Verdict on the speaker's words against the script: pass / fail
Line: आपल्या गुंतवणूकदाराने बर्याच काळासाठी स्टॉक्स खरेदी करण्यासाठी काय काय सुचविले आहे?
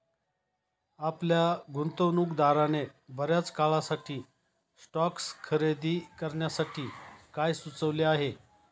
fail